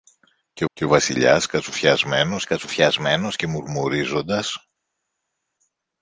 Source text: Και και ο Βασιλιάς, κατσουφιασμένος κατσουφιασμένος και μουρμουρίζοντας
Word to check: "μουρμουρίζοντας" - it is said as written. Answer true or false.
true